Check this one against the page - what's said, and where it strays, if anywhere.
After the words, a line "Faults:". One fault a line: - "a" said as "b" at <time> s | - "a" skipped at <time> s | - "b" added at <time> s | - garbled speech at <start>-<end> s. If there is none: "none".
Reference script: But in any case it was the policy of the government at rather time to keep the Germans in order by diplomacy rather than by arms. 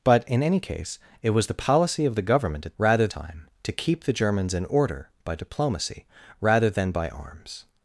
But in any case it was the policy of the government at rather time to keep the Germans in order by diplomacy rather than by arms.
Faults:
none